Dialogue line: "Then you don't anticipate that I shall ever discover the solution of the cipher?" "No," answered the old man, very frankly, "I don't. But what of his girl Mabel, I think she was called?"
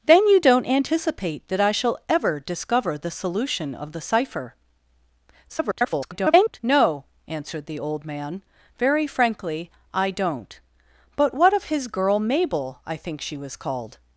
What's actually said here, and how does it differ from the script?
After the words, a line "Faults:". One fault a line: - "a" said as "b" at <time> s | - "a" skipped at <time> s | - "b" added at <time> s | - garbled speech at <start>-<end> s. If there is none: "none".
"Then you don't anticipate that I shall ever discover the solution of the cipher?" [garbled] "No," answered the old man, very frankly, "I don't. But what of his girl Mabel, I think she was called?"
Faults:
- garbled speech at 5.5-6.6 s